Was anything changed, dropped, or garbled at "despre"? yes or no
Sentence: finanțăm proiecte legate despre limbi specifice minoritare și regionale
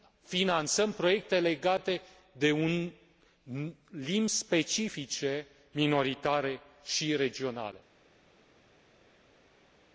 yes